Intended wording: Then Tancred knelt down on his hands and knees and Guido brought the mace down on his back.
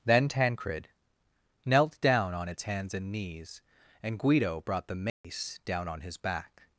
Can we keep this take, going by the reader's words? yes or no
no